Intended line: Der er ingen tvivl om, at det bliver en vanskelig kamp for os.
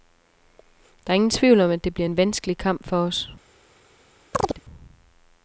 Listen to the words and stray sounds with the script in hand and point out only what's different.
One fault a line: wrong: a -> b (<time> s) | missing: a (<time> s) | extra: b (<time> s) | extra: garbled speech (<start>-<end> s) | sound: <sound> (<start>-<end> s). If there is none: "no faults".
sound: chirp (4.3-4.6 s)